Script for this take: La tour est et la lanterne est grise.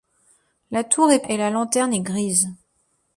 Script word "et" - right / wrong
right